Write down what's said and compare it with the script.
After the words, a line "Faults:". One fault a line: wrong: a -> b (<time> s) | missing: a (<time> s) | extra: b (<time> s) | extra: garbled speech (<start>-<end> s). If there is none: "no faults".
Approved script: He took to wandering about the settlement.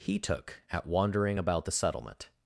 He took at wandering about the settlement.
Faults:
wrong: to -> at (0.7 s)